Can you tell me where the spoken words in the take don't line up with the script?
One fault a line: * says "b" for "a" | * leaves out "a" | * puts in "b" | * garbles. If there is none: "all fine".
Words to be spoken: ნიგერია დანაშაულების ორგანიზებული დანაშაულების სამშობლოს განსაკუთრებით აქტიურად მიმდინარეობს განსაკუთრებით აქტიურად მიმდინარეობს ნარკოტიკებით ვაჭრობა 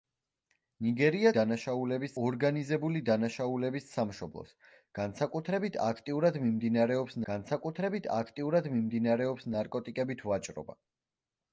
all fine